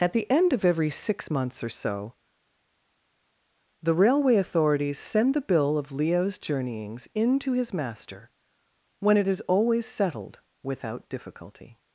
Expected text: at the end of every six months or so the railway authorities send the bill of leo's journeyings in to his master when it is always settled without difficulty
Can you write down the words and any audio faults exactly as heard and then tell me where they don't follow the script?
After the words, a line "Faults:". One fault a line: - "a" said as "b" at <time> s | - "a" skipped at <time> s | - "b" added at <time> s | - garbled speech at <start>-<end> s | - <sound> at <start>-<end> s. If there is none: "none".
at the end of every six months or so the railway authorities send the bill of leo's journeyings in to his master when it is always settled without difficulty
Faults:
none